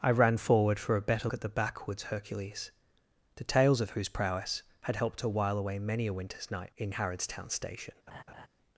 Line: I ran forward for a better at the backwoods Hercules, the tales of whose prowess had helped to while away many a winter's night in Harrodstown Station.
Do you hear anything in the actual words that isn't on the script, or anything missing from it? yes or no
no